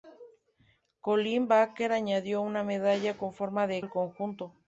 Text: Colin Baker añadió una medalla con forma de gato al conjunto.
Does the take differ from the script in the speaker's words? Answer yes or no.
yes